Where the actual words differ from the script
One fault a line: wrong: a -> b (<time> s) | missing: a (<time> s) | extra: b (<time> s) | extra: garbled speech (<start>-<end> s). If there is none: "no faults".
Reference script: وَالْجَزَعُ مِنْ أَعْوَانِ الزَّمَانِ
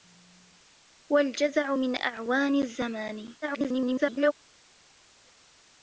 extra: garbled speech (3.4-4.3 s)